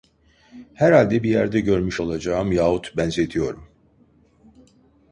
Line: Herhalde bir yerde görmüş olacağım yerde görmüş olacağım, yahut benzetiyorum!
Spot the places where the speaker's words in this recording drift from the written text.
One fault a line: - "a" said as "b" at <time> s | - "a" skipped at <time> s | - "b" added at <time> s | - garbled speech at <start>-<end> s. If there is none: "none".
- "yerde görmüş olacağım" skipped at 2.5 s